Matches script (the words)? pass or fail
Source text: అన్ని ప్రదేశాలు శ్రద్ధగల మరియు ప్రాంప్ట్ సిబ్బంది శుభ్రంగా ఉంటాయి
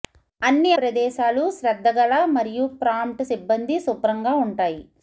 pass